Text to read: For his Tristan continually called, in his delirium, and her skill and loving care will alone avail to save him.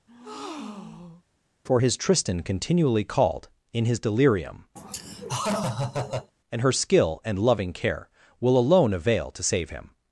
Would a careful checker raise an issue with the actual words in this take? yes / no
no